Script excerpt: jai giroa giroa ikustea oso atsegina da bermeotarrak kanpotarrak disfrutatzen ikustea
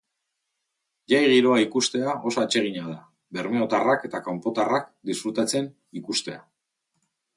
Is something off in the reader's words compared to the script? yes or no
yes